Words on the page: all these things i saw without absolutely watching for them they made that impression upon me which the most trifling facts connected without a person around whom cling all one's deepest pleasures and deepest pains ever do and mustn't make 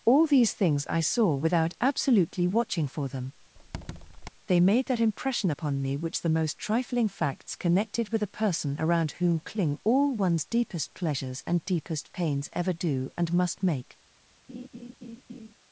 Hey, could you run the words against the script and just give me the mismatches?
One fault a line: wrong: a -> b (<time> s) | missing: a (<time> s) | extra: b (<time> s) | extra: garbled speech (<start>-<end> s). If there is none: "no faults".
wrong: without -> with (8.1 s)
wrong: mustn't -> must (13.3 s)